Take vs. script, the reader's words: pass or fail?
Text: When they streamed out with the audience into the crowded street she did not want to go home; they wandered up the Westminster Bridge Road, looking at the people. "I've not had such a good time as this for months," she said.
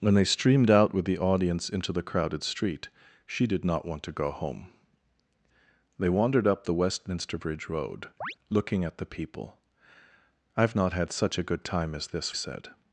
fail